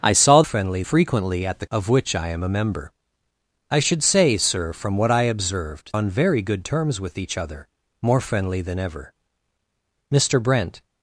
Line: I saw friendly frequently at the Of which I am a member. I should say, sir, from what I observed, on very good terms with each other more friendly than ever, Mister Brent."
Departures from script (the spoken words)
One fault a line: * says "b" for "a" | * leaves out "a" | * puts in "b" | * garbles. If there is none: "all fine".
all fine